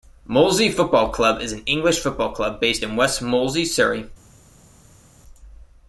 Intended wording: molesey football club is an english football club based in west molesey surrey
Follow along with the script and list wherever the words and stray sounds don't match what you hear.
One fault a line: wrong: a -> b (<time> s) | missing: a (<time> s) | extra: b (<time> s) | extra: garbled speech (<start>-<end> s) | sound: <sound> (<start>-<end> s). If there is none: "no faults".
no faults